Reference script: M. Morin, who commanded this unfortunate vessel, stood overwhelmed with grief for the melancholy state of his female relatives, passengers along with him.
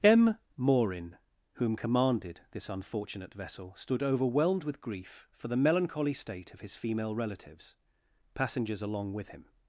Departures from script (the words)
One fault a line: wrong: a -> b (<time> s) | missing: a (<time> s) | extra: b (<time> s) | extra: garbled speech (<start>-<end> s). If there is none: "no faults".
wrong: who -> whom (1.5 s)